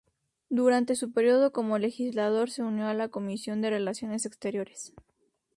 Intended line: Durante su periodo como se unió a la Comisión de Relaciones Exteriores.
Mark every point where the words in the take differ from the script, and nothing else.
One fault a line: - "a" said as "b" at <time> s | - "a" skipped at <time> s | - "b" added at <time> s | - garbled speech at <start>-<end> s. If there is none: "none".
- "legislador" added at 1.8 s